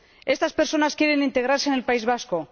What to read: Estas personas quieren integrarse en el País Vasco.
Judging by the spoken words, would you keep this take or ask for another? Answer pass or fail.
pass